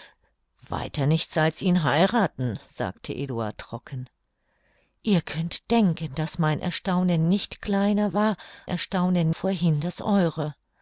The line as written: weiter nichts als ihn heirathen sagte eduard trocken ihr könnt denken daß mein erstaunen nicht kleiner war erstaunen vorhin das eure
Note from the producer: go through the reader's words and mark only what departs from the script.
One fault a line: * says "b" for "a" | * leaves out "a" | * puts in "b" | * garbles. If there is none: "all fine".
all fine